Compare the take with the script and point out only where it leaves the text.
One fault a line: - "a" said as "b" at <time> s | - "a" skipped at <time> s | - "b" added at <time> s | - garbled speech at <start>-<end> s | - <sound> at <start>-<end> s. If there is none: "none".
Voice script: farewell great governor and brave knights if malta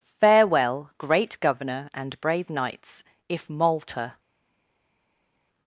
none